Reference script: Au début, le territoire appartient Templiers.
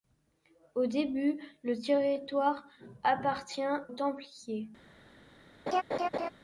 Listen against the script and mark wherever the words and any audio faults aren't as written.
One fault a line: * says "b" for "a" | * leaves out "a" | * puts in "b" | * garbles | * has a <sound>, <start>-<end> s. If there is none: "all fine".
* has a laugh, 5.7-6.3 s